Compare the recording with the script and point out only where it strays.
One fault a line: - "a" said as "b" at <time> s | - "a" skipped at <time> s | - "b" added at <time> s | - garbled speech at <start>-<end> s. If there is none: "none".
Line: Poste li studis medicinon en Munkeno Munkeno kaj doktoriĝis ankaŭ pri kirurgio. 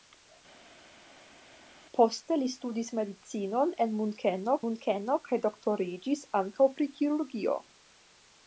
none